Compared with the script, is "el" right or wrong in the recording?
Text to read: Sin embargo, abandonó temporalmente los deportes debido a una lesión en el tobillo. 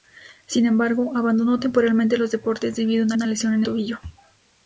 wrong